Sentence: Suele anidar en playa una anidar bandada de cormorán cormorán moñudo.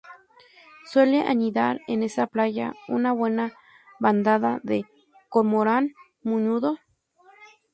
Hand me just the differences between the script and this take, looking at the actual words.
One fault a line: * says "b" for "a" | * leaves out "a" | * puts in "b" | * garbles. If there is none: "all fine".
* puts in "esa"
* says "buena" for "anidar"
* leaves out "cormorán"